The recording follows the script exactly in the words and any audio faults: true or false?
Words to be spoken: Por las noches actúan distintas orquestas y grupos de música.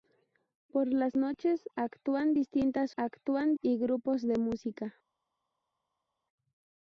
false